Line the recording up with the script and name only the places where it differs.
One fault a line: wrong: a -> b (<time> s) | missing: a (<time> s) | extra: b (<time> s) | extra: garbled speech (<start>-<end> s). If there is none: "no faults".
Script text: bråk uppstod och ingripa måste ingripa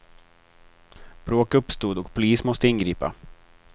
wrong: ingripa -> polis (2.1 s)